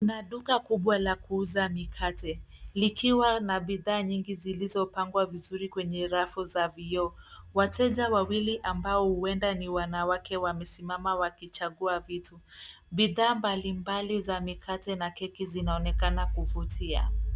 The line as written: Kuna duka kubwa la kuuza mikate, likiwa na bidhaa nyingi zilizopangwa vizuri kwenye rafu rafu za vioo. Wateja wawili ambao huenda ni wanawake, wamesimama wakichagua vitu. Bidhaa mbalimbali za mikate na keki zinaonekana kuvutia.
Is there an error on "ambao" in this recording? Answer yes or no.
no